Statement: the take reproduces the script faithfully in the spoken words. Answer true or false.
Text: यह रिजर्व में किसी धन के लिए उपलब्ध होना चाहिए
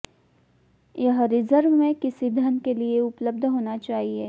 true